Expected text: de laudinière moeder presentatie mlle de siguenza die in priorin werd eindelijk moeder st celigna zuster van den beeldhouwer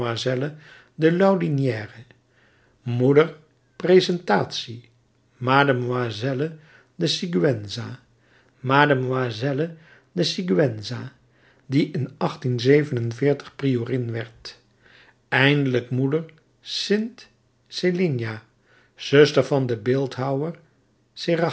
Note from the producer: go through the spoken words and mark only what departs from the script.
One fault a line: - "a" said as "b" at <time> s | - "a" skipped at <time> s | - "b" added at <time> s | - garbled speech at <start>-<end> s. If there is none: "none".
- "mlle de siguenza" added at 8.6 s